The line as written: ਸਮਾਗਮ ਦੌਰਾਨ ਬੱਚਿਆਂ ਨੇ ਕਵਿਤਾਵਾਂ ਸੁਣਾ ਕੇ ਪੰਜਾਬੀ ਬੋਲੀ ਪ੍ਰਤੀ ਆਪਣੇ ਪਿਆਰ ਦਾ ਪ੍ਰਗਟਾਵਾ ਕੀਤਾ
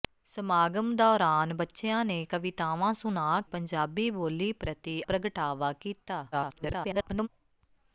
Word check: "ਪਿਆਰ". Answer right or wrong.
wrong